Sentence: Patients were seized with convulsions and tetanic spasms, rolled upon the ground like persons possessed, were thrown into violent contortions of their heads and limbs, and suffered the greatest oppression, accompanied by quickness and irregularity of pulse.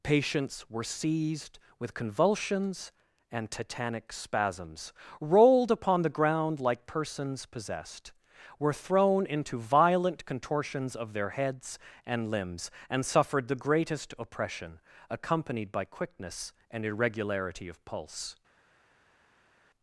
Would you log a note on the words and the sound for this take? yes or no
no